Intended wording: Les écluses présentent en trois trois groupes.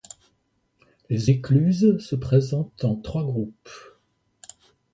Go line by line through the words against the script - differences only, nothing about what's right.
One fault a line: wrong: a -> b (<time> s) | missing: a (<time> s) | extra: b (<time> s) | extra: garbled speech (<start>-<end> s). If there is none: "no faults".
extra: se (2.0 s)
missing: trois (3.2 s)